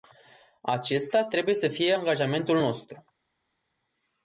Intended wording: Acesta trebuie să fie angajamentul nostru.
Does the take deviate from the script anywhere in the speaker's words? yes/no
no